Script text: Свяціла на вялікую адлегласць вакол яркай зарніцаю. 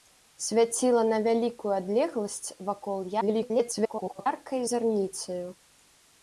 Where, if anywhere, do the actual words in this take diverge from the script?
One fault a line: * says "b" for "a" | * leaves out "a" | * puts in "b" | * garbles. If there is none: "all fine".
* garbles